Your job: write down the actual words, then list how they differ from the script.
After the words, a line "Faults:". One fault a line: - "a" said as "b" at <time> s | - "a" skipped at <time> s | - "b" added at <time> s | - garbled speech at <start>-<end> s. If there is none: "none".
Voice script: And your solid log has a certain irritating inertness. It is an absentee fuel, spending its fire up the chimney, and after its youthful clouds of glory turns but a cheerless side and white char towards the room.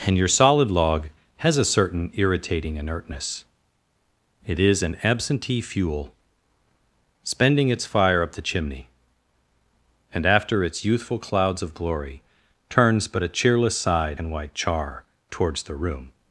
And your solid log has a certain irritating inertness. It is an absentee fuel, spending its fire up the chimney, and after its youthful clouds of glory turns but a cheerless side and white char towards the room.
Faults:
none